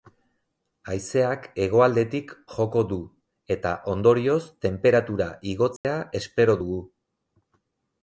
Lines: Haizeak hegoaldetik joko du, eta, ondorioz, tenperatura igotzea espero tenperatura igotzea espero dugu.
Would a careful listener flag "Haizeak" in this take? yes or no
no